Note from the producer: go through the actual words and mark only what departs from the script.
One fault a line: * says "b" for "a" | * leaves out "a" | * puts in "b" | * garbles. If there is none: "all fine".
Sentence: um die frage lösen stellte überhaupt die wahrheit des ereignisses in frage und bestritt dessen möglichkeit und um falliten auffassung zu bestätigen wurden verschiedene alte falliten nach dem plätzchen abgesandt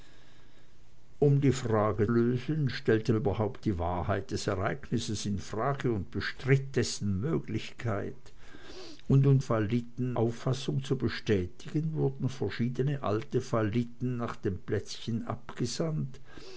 all fine